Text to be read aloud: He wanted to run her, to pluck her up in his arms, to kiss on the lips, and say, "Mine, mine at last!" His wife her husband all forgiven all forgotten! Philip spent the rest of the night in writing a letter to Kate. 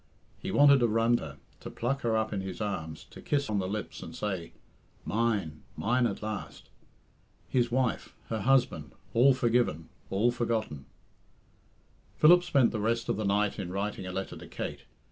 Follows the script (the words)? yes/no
yes